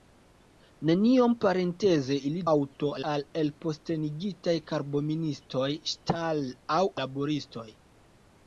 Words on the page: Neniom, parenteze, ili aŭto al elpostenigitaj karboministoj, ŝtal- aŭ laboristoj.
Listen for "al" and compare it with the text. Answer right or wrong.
right